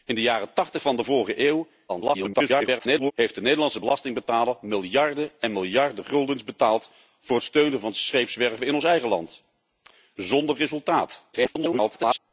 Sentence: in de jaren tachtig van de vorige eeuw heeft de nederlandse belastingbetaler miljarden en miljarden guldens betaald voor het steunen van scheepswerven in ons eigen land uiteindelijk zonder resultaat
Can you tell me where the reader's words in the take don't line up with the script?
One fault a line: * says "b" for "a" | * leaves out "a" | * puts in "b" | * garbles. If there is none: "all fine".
* garbles
* leaves out "uiteindelijk"
* garbles